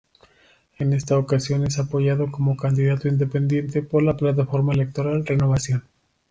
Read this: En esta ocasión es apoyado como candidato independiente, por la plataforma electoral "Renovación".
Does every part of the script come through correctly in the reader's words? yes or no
yes